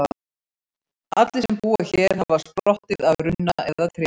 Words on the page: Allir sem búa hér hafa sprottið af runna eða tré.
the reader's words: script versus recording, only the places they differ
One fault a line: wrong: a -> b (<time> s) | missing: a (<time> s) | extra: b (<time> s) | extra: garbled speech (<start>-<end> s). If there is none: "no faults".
no faults